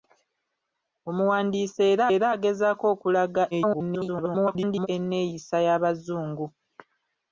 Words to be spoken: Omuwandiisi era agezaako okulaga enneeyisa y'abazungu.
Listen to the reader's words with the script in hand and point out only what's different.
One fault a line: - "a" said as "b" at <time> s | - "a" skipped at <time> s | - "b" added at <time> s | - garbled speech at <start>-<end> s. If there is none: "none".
- "era" added at 2.1 s
- garbled speech at 3.5-4.9 s